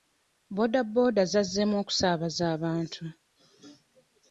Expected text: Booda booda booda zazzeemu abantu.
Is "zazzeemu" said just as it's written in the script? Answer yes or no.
no